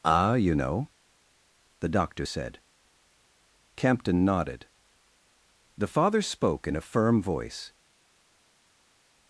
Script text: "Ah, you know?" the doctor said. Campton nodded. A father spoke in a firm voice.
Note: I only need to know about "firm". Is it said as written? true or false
true